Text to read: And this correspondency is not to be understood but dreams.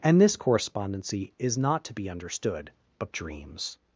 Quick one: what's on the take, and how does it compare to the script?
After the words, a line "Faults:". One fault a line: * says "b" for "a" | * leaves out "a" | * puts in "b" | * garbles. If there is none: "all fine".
And this correspondency is not to be understood but dreams.
Faults:
all fine